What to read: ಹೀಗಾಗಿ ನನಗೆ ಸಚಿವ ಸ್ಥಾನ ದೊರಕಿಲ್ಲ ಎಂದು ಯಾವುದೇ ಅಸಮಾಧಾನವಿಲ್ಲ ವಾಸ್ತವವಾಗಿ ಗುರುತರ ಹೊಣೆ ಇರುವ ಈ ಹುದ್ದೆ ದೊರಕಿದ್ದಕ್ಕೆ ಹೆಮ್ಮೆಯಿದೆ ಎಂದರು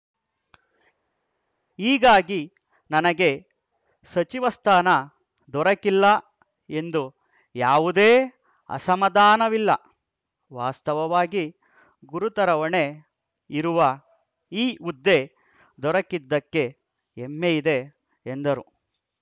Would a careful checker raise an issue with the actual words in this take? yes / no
no